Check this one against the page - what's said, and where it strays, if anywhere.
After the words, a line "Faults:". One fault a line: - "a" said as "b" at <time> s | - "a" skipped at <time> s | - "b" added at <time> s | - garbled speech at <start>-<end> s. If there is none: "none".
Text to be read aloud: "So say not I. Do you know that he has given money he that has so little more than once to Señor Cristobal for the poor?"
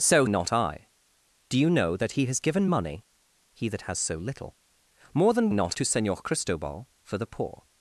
"So not I. Do you know that he has given money he that has so little more than not to Señor Cristobal for the poor?"
Faults:
- "say" skipped at 0.2 s
- "once" said as "not" at 5.5 s